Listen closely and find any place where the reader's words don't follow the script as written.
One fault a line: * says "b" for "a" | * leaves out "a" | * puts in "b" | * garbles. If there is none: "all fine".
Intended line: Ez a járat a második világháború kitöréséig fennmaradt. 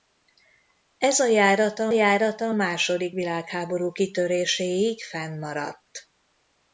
* puts in "járat a"